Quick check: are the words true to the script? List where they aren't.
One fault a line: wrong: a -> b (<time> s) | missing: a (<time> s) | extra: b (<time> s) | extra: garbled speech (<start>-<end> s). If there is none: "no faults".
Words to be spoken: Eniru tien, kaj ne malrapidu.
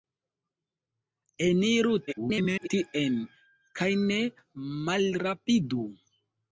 extra: garbled speech (2.1-2.7 s)